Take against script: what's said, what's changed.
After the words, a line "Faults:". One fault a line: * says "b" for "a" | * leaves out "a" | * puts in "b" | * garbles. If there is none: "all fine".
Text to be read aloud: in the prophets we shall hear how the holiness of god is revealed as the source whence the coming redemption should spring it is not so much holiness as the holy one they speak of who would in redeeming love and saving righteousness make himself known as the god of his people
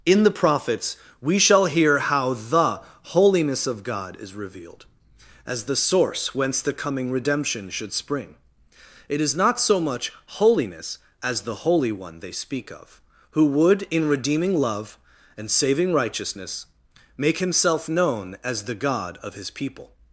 in the prophets we shall hear how the holiness of god is revealed as the source whence the coming redemption should spring it is not so much holiness as the holy one they speak of who would in redeeming love and saving righteousness make himself known as the god of his people
Faults:
all fine